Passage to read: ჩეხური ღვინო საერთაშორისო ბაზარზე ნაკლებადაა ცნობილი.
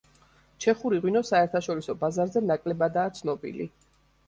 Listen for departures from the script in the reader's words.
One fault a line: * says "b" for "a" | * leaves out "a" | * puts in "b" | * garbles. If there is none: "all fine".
all fine